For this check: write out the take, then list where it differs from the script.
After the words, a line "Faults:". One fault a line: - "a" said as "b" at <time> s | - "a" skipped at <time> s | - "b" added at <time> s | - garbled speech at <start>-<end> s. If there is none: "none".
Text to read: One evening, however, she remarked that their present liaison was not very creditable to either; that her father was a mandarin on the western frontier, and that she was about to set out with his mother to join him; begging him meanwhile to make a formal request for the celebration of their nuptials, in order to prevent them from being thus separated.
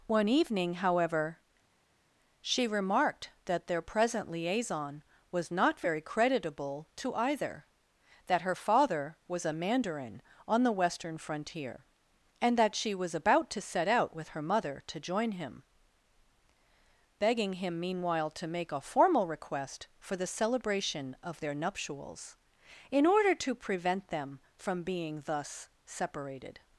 One evening, however, she remarked that their present liaison was not very creditable to either; that her father was a mandarin on the western frontier, and that she was about to set out with her mother to join him; begging him meanwhile to make a formal request for the celebration of their nuptials, in order to prevent them from being thus separated.
Faults:
- "his" said as "her" at 14.3 s